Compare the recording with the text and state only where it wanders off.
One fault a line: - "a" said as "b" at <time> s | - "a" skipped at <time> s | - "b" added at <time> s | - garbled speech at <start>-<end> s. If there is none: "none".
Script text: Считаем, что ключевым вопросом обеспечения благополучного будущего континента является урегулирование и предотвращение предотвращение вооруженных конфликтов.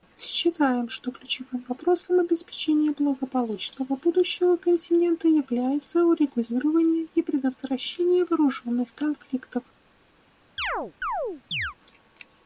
- "предотвращение" skipped at 8.2 s